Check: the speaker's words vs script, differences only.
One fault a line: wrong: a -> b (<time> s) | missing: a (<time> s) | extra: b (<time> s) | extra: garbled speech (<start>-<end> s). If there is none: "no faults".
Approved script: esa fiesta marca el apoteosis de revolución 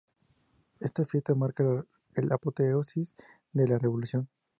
wrong: esa -> esta (0.8 s)
wrong: el -> la (2.2 s)
extra: la (3.7 s)